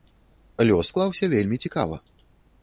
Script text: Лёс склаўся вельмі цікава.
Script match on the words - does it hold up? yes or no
yes